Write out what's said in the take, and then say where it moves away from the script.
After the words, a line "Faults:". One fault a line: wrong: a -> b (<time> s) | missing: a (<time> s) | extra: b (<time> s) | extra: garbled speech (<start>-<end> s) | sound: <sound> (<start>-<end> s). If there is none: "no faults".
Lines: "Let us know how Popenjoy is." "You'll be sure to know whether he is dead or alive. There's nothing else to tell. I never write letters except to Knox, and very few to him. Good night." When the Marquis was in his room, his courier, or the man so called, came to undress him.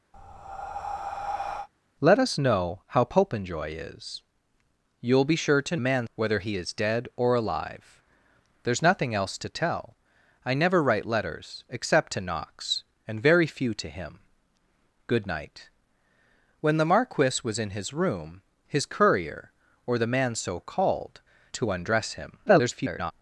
"Let us know how Popenjoy is." "You'll be sure to man whether he is dead or alive. There's nothing else to tell. I never write letters except to Knox, and very few to him. Good night." When the Marquis was in his room, his courier, or the man so called, to undress him. [garbled]
Faults:
sound: breath (0.1-1.7 s)
wrong: know -> man (5.8 s)
missing: came (21.2 s)
extra: garbled speech (22.5-23.1 s)